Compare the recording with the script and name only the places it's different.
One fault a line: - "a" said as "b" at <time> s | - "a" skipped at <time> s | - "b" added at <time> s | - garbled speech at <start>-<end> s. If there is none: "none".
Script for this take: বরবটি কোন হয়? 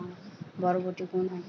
none